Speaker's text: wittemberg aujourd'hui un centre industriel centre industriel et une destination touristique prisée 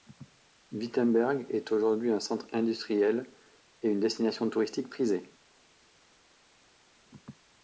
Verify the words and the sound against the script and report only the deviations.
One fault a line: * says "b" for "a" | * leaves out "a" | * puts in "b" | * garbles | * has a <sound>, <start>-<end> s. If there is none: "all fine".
* puts in "est"
* leaves out "centre industriel"